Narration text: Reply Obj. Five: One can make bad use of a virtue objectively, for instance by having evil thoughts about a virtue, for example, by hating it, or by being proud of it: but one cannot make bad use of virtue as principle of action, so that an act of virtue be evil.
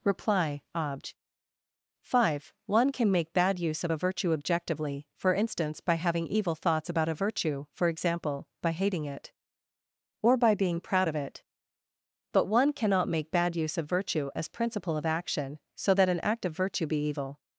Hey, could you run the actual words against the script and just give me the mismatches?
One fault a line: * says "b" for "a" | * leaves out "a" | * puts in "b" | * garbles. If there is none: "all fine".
all fine